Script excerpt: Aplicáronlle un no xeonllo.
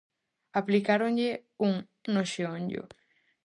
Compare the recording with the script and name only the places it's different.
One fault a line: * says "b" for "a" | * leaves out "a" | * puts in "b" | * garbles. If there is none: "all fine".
all fine